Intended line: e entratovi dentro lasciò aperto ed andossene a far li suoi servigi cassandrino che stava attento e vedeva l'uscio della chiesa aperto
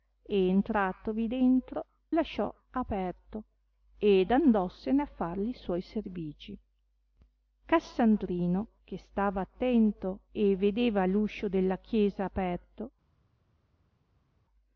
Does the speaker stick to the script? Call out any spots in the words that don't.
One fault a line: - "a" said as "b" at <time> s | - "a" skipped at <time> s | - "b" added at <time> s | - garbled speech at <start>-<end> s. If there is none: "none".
none